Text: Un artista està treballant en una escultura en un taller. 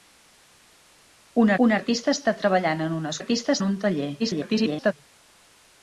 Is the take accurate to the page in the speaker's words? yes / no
no